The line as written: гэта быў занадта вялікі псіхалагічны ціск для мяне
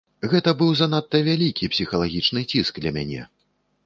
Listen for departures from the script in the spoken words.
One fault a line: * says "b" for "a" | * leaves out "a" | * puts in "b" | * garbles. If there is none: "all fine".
all fine